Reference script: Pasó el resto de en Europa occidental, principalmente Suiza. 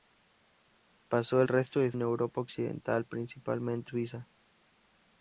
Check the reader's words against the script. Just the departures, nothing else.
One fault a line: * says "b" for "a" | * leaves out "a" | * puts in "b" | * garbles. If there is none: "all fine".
all fine